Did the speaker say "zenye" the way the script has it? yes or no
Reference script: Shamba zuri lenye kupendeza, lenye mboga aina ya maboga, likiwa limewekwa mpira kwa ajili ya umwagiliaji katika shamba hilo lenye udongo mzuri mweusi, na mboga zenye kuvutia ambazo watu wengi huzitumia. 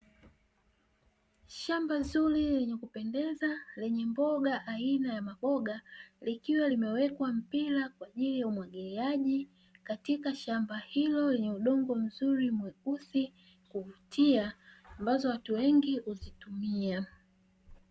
no